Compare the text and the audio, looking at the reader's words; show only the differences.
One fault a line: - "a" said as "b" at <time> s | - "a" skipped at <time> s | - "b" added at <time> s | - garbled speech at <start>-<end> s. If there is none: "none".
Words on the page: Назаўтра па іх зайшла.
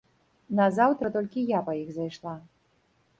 - "толькі я" added at 1.2 s